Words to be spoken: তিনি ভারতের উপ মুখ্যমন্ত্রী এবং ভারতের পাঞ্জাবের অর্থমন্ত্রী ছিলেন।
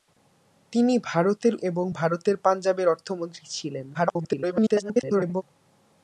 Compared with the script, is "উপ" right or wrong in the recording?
wrong